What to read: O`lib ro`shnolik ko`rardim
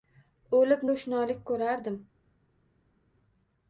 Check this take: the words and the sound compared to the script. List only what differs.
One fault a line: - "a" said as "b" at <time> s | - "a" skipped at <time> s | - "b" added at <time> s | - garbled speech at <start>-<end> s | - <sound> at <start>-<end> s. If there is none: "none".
none